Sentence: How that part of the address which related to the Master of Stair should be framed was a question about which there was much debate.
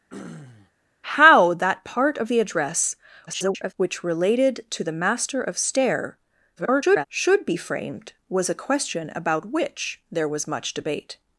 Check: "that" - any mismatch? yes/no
no